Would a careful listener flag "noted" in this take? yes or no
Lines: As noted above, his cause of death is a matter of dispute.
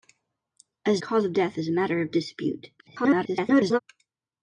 yes